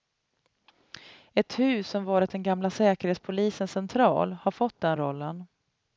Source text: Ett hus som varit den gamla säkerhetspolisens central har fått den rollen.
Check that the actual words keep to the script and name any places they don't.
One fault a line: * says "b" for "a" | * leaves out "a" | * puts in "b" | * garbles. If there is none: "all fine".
all fine